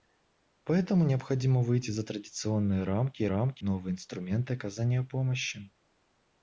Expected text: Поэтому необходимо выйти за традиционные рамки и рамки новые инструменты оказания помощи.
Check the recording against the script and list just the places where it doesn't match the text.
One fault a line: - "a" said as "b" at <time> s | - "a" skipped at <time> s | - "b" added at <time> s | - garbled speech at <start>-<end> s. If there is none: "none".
none